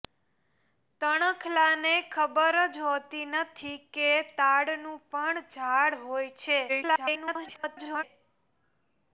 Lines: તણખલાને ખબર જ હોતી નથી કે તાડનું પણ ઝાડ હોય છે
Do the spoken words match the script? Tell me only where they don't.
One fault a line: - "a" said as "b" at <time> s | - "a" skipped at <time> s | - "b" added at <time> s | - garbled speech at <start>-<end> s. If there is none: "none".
- garbled speech at 6.7-8.0 s